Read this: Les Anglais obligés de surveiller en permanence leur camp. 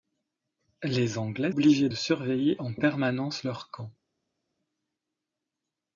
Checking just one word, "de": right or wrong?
right